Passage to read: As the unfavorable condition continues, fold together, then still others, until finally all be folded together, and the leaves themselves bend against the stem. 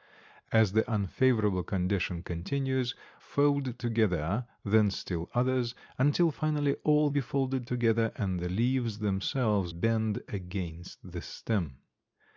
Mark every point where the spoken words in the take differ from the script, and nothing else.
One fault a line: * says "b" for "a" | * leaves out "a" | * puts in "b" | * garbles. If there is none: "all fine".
all fine